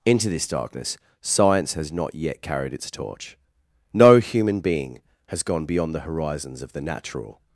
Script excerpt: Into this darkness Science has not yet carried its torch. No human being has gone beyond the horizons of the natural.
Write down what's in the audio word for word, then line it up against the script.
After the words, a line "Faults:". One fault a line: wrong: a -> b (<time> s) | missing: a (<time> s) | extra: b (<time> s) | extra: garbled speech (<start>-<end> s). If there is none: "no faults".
Into this darkness Science has not yet carried its torch. No human being has gone beyond the horizons of the natural.
Faults:
no faults